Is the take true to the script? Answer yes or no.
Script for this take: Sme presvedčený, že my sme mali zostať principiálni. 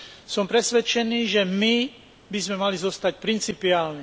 no